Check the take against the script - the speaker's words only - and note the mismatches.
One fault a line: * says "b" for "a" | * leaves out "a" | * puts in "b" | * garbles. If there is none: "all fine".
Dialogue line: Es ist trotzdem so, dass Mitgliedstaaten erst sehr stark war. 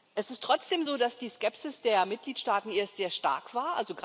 * puts in "die Skepsis der"